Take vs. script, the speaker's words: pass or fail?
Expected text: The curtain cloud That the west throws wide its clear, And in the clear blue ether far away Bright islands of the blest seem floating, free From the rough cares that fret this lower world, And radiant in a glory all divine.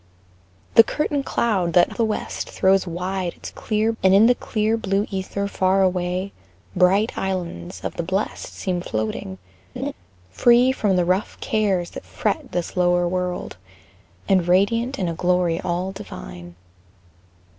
pass